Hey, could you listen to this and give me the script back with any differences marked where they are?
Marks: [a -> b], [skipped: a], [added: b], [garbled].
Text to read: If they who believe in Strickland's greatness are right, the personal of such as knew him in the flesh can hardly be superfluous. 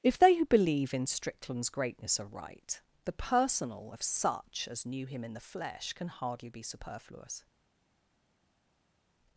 If they who believe in Strickland's greatness are right, the personal of such as knew him in the flesh can hardly be superfluous.